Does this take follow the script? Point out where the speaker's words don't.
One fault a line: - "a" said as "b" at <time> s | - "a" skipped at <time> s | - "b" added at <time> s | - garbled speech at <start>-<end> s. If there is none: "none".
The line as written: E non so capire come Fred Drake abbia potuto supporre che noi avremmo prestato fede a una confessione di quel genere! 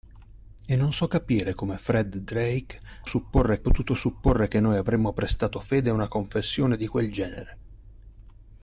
- "abbia" said as "supporre" at 3.0 s